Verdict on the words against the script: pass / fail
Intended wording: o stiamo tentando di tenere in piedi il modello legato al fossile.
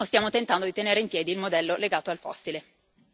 pass